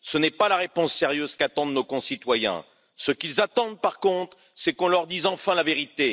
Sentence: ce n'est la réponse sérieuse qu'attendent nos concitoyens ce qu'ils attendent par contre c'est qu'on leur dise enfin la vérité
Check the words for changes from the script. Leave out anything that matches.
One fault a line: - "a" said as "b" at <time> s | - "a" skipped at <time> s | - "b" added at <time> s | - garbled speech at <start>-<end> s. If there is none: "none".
- "pas" added at 0.3 s